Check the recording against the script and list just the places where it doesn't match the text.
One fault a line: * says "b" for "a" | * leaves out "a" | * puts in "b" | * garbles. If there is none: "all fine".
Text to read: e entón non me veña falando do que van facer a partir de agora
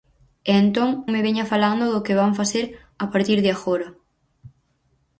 * leaves out "non"